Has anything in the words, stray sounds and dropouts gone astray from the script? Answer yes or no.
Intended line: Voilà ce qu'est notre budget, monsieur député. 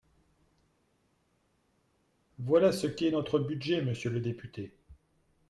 yes